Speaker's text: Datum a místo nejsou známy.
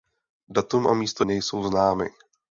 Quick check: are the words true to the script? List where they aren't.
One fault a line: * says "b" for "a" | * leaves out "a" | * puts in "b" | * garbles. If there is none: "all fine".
all fine